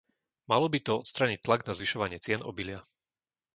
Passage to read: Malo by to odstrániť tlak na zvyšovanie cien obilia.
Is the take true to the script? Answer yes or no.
yes